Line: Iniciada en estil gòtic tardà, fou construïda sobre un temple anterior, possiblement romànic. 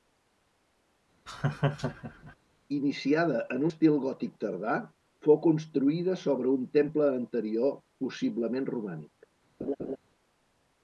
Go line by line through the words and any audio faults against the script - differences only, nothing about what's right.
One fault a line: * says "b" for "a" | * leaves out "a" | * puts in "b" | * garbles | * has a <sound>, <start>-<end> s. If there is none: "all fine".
* has a laugh, 1.3-2.4 s
* has a laugh, 9.6-10.0 s